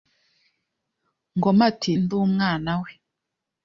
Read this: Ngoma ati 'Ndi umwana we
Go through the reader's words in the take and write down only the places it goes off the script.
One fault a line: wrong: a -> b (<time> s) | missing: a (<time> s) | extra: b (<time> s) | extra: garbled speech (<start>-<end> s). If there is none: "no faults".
no faults